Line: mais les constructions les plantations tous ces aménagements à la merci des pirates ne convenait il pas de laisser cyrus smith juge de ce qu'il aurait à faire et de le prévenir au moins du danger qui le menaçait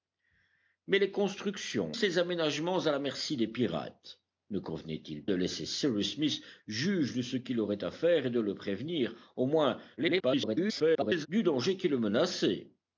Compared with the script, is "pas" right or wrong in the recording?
wrong